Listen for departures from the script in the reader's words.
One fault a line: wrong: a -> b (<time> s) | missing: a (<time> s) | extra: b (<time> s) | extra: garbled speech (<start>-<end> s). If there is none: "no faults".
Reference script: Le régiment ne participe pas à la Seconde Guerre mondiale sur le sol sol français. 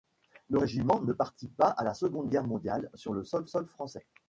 no faults